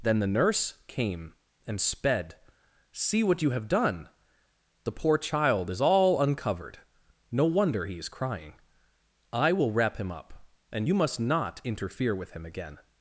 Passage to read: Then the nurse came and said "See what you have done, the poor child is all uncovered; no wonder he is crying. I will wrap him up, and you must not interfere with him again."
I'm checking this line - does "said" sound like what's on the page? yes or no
no